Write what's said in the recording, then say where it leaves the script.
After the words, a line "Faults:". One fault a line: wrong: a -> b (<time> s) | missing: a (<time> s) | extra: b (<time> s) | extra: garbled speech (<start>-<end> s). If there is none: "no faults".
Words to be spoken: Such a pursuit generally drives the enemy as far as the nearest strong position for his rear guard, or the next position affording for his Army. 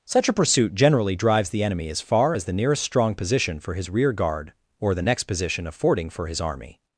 Such a pursuit generally drives the enemy as far as the nearest strong position for his rear guard, or the next position affording for his Army.
Faults:
no faults